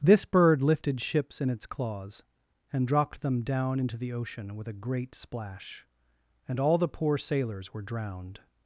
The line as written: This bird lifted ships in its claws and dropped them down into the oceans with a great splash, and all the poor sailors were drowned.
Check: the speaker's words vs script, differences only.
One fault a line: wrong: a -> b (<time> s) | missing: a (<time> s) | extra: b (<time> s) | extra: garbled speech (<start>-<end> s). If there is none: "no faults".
wrong: oceans -> ocean (4.1 s)